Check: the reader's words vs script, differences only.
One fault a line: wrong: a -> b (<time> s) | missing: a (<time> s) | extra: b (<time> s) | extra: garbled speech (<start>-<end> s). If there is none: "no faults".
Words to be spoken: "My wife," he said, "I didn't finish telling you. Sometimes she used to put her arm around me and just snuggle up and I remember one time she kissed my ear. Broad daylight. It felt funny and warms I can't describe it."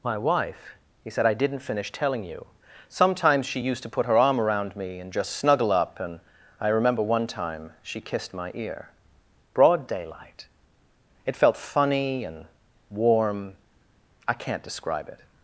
wrong: warms -> warm (12.9 s)